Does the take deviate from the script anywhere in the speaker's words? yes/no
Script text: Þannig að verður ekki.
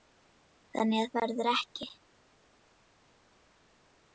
no